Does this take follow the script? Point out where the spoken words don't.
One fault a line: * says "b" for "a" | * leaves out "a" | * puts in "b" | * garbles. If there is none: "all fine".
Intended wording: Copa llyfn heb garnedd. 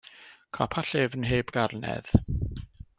all fine